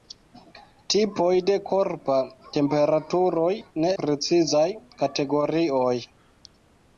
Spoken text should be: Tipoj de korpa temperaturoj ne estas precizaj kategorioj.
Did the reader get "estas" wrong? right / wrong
wrong